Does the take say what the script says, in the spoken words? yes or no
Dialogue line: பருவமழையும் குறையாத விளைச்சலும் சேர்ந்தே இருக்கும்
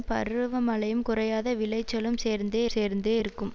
no